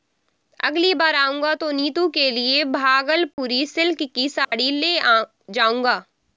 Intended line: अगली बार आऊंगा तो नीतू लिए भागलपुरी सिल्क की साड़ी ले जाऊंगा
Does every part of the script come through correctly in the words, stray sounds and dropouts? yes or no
no